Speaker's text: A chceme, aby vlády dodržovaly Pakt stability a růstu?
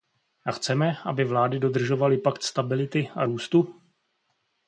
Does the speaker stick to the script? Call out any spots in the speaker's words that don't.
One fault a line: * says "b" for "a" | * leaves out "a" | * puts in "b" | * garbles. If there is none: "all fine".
all fine